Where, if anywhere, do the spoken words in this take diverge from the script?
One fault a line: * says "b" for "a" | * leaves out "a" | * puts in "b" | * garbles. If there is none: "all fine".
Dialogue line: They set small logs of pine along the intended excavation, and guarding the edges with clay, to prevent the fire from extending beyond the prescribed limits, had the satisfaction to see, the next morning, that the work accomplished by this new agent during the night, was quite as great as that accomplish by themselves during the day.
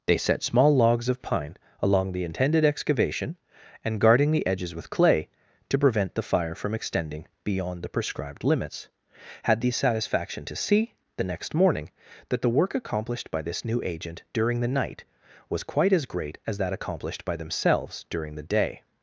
* says "accomplished" for "accomplish"